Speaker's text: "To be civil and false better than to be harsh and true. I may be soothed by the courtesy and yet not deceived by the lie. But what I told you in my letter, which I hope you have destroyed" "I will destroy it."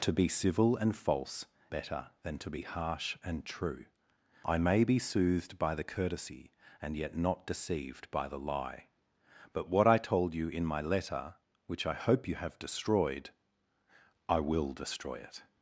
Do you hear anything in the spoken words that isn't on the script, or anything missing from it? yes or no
no